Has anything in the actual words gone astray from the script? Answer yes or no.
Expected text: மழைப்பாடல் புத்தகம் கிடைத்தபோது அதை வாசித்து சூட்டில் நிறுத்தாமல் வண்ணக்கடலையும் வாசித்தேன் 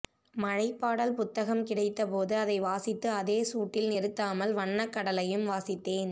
yes